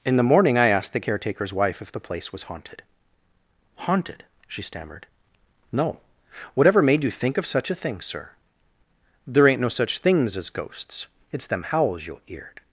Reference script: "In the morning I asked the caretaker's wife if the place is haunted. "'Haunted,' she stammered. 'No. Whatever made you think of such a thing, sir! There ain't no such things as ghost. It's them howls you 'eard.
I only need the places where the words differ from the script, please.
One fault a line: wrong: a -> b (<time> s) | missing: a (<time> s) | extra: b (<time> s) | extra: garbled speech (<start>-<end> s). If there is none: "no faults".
wrong: is -> was (2.3 s)
wrong: ghost -> ghosts (10.5 s)